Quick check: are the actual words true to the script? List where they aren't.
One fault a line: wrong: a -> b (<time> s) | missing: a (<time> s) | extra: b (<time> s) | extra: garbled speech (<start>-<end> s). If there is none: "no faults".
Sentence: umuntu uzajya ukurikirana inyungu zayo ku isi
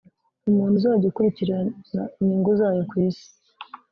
no faults